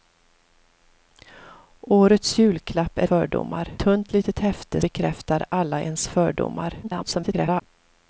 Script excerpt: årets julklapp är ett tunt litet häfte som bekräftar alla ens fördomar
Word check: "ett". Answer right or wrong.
wrong